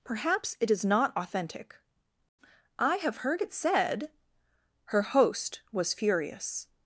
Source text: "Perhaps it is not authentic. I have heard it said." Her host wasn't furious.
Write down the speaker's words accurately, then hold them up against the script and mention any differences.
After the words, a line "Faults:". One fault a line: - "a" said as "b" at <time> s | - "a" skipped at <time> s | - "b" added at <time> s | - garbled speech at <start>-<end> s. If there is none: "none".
"Perhaps it is not authentic. I have heard it said." Her host was furious.
Faults:
- "wasn't" said as "was" at 5.7 s